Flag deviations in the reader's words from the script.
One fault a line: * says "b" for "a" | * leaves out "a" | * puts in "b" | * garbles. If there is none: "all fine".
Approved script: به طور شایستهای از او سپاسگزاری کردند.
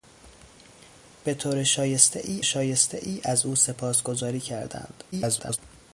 * puts in "شایستهای"
* garbles